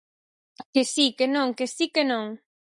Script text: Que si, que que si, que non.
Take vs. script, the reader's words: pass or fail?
fail